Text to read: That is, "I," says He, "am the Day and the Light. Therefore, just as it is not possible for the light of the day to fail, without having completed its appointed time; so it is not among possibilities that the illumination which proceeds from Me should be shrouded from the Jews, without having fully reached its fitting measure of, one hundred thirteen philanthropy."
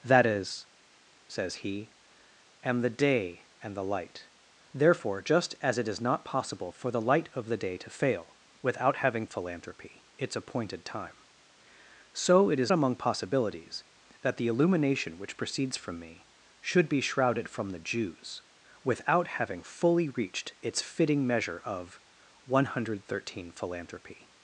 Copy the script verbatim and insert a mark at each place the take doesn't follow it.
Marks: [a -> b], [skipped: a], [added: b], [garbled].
That is, [skipped: "I,"] says He, "am the Day and the Light. Therefore, just as it is not possible for the light of the day to fail, without having [completed -> philanthropy] its appointed time; so it is [skipped: not] among possibilities that the illumination which proceeds from Me should be shrouded from the Jews, without having fully reached its fitting measure of, one hundred thirteen philanthropy."